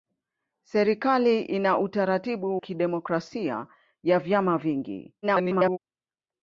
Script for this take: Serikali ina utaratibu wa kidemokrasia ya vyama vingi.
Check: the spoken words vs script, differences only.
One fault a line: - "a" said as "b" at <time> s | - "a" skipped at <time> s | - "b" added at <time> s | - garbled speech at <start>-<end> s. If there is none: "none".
- "wa" skipped at 2.6 s
- garbled speech at 5.2-5.8 s